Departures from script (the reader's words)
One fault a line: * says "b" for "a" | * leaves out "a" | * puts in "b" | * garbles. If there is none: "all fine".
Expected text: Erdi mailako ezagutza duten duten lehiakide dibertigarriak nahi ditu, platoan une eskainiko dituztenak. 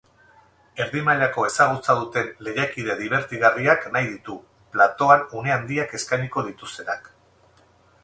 * leaves out "duten"
* puts in "handiak"